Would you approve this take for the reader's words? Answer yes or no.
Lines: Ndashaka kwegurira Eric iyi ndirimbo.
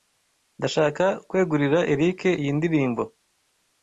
yes